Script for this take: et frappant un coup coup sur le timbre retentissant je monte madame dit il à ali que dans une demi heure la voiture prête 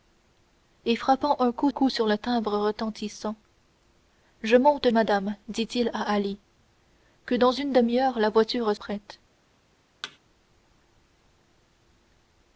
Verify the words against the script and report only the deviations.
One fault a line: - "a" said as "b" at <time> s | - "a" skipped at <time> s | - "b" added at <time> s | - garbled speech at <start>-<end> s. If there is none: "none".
none